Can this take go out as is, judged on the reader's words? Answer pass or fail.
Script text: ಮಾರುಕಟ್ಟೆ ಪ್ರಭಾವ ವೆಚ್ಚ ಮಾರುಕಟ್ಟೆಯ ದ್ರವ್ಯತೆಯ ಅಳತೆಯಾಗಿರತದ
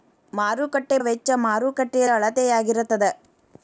fail